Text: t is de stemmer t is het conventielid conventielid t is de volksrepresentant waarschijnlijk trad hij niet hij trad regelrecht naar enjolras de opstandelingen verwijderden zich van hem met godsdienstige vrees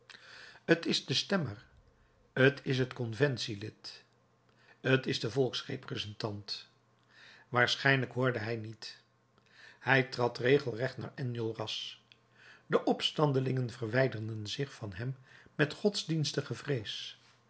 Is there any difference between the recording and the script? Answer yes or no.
yes